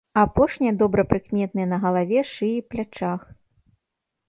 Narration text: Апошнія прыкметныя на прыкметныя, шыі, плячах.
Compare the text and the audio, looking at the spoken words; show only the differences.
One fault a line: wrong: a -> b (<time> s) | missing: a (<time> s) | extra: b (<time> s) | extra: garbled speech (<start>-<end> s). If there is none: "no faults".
extra: добра (0.8 s)
wrong: прыкметныя -> галаве (1.9 s)